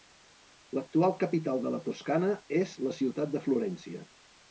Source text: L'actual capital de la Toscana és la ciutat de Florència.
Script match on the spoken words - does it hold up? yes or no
yes